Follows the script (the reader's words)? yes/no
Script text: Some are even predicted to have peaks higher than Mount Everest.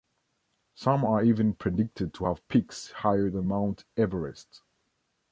yes